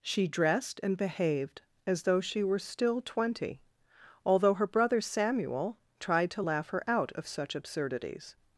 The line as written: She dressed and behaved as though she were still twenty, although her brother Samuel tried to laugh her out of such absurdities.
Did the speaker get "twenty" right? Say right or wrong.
right